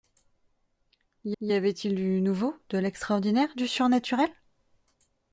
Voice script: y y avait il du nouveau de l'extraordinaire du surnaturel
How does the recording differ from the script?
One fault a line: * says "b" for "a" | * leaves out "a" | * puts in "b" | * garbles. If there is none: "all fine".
all fine